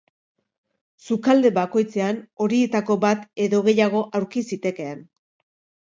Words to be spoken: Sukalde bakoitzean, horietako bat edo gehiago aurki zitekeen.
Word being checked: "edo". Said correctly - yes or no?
yes